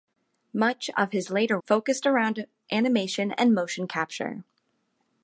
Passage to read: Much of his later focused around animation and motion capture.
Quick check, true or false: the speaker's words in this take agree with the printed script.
true